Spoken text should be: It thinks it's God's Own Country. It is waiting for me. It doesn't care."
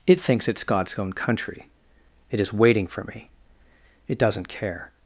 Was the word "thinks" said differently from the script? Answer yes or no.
no